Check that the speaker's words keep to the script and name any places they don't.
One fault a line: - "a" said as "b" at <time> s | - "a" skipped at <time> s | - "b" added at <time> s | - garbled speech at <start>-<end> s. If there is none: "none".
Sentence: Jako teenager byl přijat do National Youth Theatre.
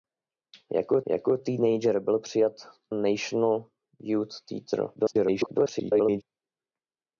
- "jako" added at 1.1 s
- "do" skipped at 2.5 s
- garbled speech at 5.0-6.2 s